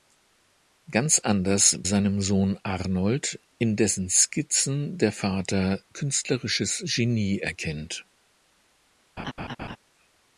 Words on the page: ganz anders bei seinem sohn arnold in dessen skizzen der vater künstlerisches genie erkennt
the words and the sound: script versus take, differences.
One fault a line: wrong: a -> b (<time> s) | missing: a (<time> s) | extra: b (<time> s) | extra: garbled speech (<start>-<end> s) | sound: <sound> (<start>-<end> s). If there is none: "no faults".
missing: bei (1.8 s)
sound: laugh (9.2-9.8 s)